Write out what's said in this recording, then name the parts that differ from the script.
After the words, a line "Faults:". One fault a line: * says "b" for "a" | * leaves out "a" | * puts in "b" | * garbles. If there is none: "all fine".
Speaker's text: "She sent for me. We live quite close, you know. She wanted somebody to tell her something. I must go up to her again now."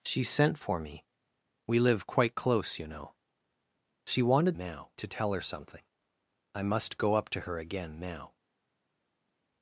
"She sent for me. We live quite close, you know. She wanted now to tell her something. I must go up to her again now."
Faults:
* says "now" for "somebody"